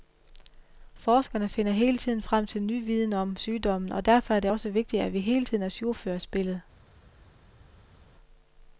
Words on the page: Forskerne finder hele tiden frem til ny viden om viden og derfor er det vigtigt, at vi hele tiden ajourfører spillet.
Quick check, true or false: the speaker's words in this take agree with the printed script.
false